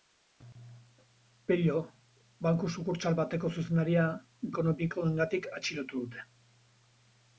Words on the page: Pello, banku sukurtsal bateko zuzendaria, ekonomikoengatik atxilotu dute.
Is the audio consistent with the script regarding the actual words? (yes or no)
yes